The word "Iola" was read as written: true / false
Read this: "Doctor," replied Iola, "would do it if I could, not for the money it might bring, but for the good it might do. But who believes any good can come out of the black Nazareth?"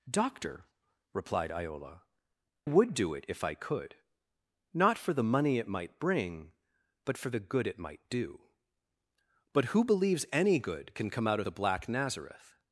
true